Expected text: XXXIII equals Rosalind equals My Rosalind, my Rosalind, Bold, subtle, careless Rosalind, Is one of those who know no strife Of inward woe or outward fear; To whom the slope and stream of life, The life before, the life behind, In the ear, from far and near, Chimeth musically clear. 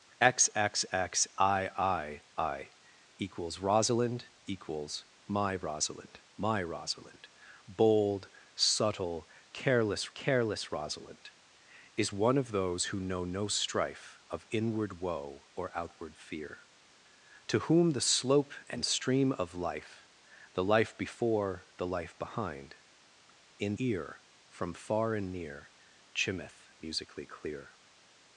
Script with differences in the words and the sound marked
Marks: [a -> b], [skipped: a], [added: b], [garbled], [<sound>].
XXXIII equals Rosalind equals My Rosalind, my Rosalind, Bold, subtle, careless [added: careless] Rosalind, Is one of those who know no strife Of inward woe or outward fear; To whom the slope and stream of life, The life before, the life behind, In [skipped: the] ear, from far and near, Chimeth musically clear.